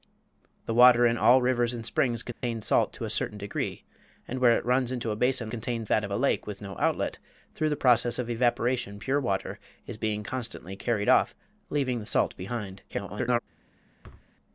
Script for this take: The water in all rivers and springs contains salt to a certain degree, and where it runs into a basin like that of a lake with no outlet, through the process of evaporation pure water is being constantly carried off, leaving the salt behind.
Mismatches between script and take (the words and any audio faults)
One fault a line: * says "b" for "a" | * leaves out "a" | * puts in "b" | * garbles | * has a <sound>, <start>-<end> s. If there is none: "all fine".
* has a dropout, 2.3-2.4 s
* says "contains" for "like"
* garbles
* has a thud, 14.0-14.3 s